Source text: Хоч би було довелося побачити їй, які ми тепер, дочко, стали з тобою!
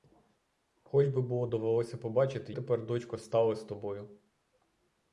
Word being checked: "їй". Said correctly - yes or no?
no